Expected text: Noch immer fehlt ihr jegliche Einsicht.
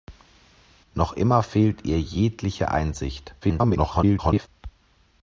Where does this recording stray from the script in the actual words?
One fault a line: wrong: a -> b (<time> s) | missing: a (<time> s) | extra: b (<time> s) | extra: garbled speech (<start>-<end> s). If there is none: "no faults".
extra: garbled speech (3.4-4.5 s)